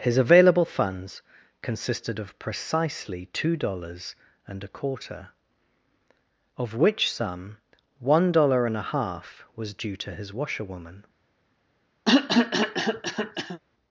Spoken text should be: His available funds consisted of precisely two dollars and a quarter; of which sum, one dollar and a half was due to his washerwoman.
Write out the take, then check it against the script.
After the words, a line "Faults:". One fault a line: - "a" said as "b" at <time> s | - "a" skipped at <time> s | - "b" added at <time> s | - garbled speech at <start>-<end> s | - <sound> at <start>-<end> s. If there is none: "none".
His available funds consisted of precisely two dollars and a quarter; of which sum, one dollar and a half was due to his washerwoman.
Faults:
- cough at 12.1-13.6 s